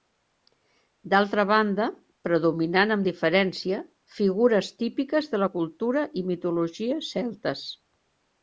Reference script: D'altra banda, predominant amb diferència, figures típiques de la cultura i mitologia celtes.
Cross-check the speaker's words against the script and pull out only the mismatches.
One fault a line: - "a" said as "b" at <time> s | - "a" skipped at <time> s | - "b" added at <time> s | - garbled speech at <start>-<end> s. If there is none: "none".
none